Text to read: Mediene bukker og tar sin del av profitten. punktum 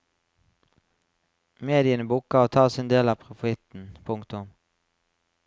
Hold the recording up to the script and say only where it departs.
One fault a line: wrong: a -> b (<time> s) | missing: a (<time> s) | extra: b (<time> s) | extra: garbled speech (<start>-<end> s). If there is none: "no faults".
no faults